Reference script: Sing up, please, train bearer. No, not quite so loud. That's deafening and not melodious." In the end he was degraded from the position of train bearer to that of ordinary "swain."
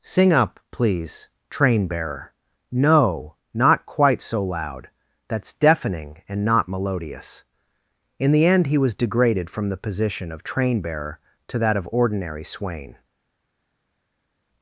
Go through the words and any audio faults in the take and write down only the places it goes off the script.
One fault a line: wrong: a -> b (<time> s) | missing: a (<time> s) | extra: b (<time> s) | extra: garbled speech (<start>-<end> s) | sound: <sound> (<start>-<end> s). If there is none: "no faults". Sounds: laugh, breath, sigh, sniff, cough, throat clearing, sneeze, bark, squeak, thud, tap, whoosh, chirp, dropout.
no faults